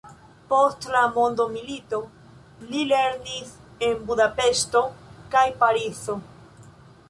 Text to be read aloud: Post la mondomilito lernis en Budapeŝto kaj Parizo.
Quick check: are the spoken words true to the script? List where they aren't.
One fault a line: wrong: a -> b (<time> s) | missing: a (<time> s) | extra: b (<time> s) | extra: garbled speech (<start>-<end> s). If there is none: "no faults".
extra: li (2.7 s)